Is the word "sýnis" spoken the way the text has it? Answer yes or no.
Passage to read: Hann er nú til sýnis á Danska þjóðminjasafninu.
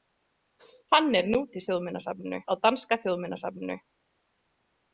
no